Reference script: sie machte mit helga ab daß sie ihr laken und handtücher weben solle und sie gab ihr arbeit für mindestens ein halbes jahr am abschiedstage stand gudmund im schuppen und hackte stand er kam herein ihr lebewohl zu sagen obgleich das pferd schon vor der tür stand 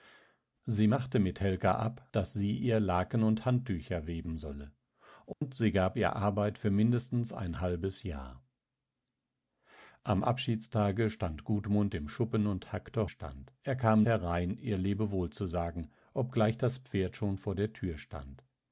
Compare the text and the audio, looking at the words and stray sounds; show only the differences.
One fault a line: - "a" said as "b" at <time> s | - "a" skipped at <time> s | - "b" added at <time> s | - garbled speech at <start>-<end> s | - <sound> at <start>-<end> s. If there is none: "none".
- dropout at 5.3-5.4 s